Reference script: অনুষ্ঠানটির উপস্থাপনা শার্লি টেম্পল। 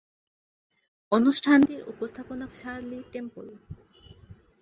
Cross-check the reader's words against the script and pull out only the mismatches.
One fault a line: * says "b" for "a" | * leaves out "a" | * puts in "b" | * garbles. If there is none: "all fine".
all fine